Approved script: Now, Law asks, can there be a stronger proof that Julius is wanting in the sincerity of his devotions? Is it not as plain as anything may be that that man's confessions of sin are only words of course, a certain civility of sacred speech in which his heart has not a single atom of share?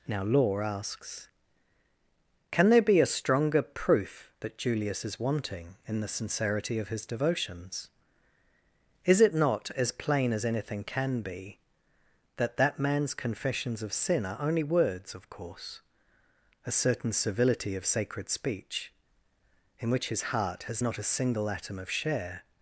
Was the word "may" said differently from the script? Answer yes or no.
yes